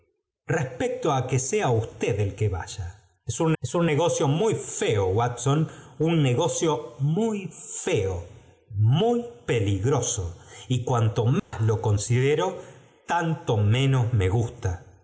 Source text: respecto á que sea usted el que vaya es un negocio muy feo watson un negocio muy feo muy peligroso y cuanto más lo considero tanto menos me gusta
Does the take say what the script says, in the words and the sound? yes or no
no